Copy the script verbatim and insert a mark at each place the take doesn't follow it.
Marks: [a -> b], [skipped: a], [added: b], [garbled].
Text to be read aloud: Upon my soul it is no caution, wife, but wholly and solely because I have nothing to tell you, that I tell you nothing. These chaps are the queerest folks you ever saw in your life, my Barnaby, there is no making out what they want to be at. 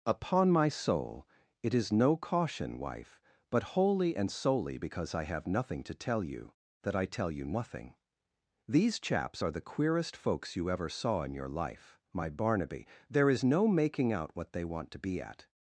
Upon my soul it is no caution, wife, but wholly and solely because I have nothing to tell you, that I tell you nothing. These chaps are the queerest folks you ever saw in your life, my Barnaby, there is no making out what they want to be at.